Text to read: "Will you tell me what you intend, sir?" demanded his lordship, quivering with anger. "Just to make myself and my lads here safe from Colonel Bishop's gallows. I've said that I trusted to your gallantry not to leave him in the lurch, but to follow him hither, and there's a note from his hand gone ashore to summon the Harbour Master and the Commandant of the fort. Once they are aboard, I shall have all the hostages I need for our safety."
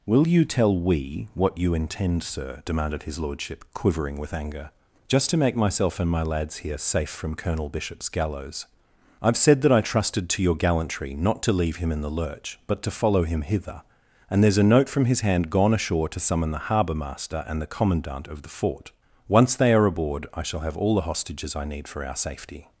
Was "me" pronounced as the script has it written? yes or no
no